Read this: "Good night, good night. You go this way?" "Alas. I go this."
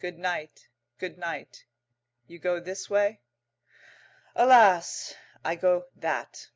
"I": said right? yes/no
yes